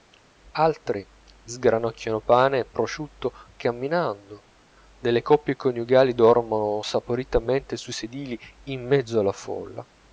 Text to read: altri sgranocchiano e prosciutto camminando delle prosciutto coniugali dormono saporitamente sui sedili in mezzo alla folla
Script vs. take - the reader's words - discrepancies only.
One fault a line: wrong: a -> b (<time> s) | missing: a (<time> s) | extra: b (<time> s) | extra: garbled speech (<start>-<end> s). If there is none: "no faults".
extra: pane (2.2 s)
wrong: prosciutto -> coppie (5.2 s)